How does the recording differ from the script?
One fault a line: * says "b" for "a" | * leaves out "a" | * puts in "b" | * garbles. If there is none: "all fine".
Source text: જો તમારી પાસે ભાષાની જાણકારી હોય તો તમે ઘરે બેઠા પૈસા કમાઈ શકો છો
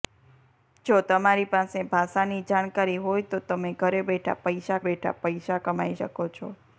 * puts in "બેઠા પૈસા"